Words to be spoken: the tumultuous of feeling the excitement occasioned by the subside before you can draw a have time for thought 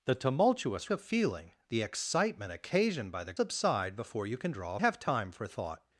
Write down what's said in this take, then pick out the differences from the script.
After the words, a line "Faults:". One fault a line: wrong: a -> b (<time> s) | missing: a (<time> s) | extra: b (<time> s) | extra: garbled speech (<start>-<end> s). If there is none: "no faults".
the tumultuous of feeling the excitement occasioned by the subside before you can draw a have time for thought
Faults:
no faults